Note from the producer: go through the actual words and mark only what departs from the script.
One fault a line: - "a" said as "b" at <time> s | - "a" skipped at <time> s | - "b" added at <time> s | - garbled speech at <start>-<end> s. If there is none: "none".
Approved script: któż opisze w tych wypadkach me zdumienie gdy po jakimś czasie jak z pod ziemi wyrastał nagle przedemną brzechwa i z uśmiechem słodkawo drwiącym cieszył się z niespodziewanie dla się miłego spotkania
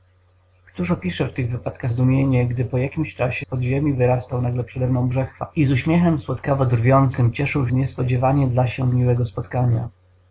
- "me" skipped at 1.9 s
- "jak" skipped at 3.5 s
- "się" skipped at 7.7 s